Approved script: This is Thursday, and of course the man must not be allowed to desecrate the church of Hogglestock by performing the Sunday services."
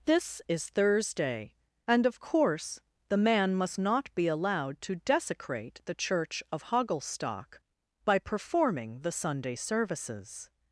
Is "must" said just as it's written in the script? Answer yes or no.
yes